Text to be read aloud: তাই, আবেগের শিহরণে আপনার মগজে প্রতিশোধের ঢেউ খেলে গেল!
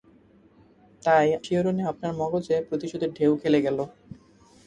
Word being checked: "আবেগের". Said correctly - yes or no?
no